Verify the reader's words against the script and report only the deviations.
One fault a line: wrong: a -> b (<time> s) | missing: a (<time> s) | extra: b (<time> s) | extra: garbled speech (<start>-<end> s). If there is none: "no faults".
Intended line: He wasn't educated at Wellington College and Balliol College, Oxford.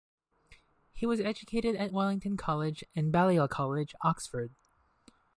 wrong: wasn't -> was (1.1 s)